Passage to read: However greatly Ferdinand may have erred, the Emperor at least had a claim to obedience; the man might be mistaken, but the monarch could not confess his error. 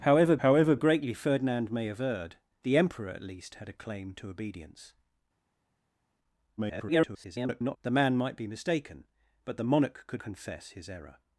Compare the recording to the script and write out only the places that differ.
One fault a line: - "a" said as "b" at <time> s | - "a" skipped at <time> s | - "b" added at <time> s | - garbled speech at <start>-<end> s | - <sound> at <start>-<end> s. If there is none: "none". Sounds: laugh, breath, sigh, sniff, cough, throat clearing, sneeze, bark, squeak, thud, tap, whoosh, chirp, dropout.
- "however" added at 0.4 s
- garbled speech at 6.6-7.8 s
- "not" skipped at 10.2 s